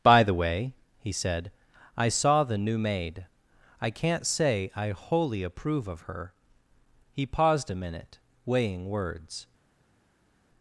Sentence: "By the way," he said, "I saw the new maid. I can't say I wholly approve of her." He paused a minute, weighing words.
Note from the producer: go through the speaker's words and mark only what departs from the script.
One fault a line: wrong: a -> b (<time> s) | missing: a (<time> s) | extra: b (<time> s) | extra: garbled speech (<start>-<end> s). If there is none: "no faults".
no faults